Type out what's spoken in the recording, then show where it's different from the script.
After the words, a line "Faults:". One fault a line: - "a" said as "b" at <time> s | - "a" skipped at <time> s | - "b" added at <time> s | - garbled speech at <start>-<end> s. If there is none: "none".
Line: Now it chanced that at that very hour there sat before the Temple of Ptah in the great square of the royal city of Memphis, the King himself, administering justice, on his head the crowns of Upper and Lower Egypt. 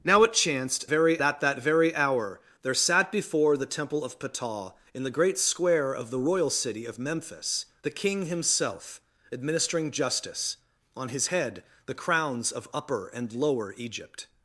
Now it chanced very at that very hour there sat before the Temple of Ptah in the great square of the royal city of Memphis, the King himself, administering justice, on his head the crowns of Upper and Lower Egypt.
Faults:
- "that" said as "very" at 0.9 s